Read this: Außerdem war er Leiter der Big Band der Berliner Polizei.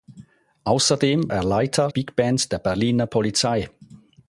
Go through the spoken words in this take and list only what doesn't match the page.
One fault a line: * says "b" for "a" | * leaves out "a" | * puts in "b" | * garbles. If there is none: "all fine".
* leaves out "war"
* leaves out "der"